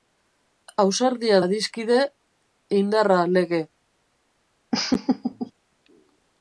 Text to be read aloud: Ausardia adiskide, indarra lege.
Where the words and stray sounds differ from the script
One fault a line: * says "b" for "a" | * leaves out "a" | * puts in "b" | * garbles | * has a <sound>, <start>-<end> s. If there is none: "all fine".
* has a laugh, 4.7-5.5 s